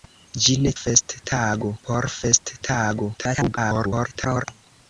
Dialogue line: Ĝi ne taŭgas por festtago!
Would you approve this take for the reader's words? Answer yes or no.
no